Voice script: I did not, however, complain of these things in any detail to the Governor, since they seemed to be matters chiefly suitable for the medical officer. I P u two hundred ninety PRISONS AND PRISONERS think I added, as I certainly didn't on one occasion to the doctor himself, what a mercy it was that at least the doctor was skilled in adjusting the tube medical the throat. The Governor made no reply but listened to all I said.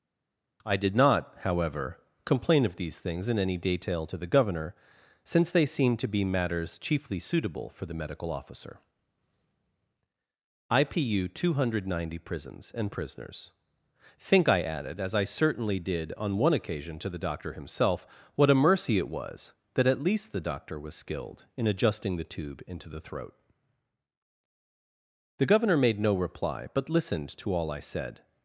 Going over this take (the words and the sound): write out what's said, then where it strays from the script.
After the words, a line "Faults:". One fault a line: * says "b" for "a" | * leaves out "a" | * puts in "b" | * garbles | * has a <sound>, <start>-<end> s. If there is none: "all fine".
I did not, however, complain of these things in any detail to the Governor, since they seemed to be matters chiefly suitable for the medical officer. I P u two hundred ninety PRISONS AND PRISONERS think I added, as I certainly did on one occasion to the doctor himself, what a mercy it was that at least the doctor was skilled in adjusting the tube into the throat. The Governor made no reply but listened to all I said.
Faults:
* says "did" for "didn't"
* says "into" for "medical"